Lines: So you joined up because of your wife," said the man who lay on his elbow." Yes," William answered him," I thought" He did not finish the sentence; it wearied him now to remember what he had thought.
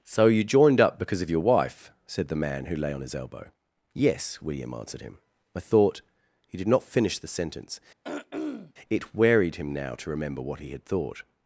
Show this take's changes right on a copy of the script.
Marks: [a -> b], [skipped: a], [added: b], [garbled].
So you joined up because of your wife," said the man who lay on his elbow." Yes," William answered him," I thought" He did not finish the sentence; it wearied him now to remember what he had thought.